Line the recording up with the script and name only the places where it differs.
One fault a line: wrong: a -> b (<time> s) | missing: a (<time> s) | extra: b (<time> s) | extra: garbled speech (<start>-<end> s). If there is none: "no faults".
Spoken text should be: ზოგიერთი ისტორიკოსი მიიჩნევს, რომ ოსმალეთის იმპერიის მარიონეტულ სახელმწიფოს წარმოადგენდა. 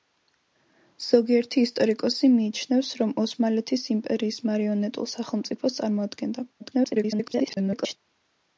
extra: garbled speech (6.6-8.0 s)